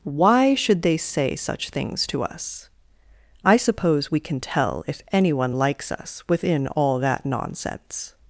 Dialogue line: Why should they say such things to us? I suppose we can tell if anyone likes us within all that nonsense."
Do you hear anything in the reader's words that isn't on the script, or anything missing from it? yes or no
no